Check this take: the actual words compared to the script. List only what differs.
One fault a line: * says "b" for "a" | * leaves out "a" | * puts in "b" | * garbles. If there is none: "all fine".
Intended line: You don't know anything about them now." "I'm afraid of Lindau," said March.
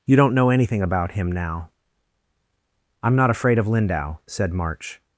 * says "him" for "them"
* puts in "not"